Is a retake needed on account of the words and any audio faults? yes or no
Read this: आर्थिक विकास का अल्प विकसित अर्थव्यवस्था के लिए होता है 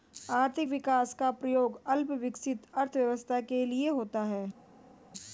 yes